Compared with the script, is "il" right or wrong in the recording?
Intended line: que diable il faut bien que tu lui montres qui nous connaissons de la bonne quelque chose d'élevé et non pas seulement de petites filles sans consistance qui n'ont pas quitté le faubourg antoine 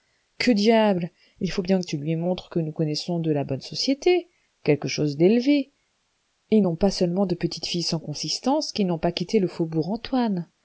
right